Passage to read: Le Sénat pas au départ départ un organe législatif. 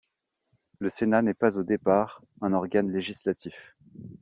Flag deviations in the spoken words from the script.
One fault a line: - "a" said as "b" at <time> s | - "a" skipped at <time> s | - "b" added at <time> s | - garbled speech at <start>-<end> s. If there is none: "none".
- "n'est" added at 1.2 s
- "départ" skipped at 2.2 s